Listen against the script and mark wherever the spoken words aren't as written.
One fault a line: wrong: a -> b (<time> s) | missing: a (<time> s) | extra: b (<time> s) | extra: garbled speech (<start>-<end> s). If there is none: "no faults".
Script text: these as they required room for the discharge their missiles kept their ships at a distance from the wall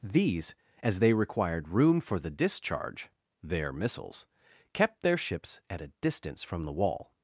no faults